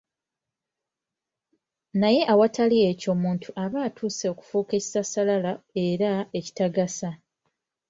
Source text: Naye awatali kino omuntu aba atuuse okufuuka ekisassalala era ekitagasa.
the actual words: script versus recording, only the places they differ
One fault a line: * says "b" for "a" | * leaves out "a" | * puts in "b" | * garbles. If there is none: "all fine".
* says "ekyo" for "kino"